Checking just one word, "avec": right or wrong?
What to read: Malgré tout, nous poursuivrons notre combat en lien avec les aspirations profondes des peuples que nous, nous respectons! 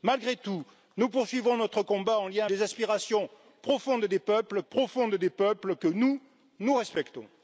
wrong